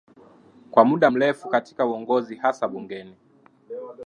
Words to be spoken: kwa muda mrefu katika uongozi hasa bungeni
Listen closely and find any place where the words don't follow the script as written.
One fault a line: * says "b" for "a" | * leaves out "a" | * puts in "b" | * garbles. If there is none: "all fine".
all fine